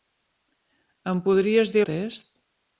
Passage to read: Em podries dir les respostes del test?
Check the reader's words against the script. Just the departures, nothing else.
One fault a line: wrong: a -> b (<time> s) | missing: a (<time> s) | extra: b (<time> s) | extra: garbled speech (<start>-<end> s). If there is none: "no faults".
missing: les respostes del (1.8 s)